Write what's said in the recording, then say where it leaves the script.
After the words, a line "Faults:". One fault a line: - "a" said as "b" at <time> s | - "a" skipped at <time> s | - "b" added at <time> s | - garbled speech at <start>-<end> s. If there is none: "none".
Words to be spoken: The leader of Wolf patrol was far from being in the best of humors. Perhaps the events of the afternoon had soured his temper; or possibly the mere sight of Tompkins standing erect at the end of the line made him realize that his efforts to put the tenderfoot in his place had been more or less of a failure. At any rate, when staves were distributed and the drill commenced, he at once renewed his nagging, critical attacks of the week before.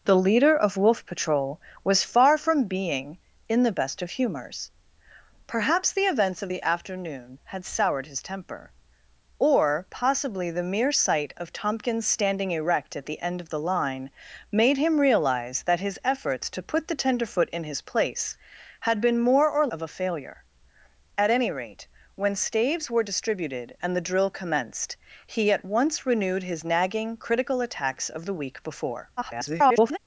The leader of Wolf patrol was far from being in the best of humors. Perhaps the events of the afternoon had soured his temper; or possibly the mere sight of Tompkins standing erect at the end of the line made him realize that his efforts to put the tenderfoot in his place had been more or of a failure. At any rate, when staves were distributed and the drill commenced, he at once renewed his nagging, critical attacks of the week before. [garbled]
Faults:
- "less" skipped at 19.7 s
- garbled speech at 29.2-30.0 s